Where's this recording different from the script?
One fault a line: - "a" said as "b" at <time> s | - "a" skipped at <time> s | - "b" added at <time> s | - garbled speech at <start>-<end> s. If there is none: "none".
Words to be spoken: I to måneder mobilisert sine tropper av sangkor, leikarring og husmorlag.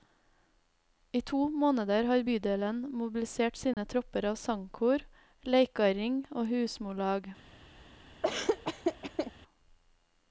- "har bydelen" added at 2.1 s